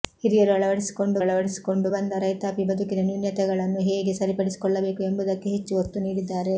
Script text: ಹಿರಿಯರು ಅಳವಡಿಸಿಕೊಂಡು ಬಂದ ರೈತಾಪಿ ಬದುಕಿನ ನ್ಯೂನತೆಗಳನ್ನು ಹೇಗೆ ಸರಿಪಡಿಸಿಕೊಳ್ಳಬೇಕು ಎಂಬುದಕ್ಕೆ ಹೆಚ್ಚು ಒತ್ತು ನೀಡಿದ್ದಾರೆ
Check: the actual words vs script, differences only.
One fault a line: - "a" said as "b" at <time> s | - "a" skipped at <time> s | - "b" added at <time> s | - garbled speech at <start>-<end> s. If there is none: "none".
- "ಅಳವಡಿಸಿಕೊಂಡು" added at 1.2 s